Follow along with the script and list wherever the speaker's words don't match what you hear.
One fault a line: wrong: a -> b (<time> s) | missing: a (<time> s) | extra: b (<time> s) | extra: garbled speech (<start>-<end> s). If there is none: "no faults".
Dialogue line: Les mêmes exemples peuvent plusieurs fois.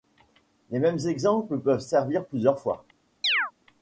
extra: servir (1.8 s)